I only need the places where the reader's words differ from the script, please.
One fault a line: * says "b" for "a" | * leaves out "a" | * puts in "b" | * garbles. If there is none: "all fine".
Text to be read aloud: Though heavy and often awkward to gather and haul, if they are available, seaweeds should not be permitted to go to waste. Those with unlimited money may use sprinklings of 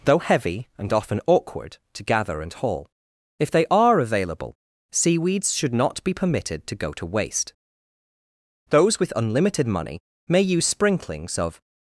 all fine